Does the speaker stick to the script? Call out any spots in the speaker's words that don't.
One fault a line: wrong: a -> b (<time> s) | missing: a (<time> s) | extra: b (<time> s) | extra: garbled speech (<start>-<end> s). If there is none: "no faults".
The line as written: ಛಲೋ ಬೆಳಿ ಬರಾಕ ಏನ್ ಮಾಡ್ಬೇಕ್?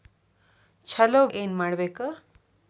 missing: ಬೆಳಿ ಬರಾಕ (1.3 s)